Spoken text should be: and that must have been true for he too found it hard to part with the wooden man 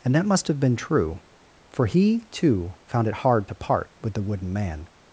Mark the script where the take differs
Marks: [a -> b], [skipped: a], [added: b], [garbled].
and that must have been true for he too found it hard to part with the wooden man